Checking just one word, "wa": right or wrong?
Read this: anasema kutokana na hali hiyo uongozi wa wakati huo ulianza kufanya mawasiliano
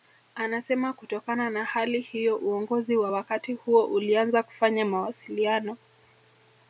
right